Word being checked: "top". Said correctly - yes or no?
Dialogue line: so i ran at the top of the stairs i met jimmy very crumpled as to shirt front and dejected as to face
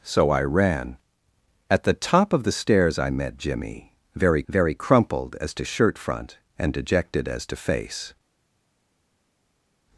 yes